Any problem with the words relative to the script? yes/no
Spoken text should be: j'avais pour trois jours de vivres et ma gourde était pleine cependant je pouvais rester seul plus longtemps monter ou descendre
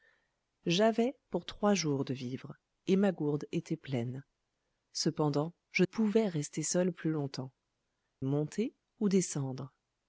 no